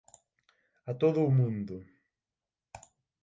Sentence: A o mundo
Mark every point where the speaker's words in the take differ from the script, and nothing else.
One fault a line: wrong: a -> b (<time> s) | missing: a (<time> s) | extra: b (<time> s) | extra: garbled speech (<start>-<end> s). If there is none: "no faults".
extra: todo (1.0 s)